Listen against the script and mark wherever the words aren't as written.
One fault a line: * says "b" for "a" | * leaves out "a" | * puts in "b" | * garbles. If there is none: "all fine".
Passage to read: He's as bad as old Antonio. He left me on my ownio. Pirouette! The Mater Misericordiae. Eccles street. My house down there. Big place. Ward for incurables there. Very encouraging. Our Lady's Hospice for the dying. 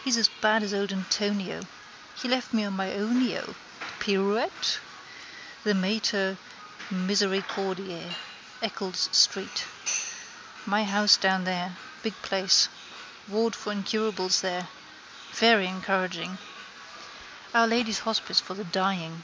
all fine